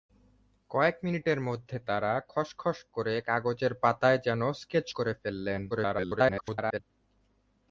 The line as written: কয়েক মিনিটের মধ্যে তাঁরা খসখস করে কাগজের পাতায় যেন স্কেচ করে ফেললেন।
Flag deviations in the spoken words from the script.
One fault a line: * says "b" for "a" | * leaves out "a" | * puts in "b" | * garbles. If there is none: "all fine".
* garbles